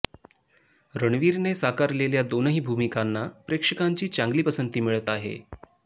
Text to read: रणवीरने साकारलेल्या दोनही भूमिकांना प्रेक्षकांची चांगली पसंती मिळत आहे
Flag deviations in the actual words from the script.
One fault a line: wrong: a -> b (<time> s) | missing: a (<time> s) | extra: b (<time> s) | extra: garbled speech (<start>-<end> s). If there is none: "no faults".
no faults